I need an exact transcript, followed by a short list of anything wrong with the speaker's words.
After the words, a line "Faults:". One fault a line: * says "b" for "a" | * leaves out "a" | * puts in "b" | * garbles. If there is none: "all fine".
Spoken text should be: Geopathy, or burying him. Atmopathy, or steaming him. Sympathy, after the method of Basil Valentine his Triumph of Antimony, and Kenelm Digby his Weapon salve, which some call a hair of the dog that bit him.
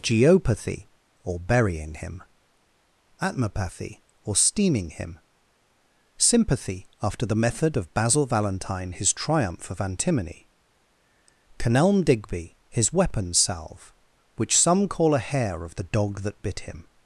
Geopathy, or burying him. Atmopathy, or steaming him. Sympathy, after the method of Basil Valentine his Triumph of Antimony, Kenelm Digby his Weapon salve, which some call a hair of the dog that bit him.
Faults:
* leaves out "and"